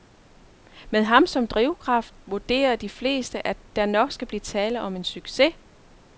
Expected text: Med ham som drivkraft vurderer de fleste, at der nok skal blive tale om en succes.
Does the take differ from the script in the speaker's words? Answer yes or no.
no